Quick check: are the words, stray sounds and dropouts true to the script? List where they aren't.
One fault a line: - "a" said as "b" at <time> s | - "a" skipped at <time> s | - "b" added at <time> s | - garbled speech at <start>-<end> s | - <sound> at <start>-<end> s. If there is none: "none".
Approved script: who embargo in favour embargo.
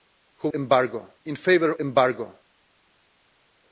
none